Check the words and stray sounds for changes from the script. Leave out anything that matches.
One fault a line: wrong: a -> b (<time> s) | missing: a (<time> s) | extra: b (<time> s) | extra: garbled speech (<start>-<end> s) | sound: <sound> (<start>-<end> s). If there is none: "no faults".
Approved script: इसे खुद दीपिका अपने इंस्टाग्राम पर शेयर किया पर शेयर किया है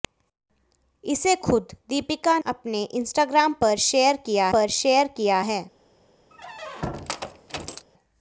sound: squeak (6.3-7.9 s)